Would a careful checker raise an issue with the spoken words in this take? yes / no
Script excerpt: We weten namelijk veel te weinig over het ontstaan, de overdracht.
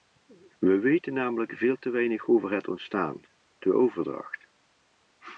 no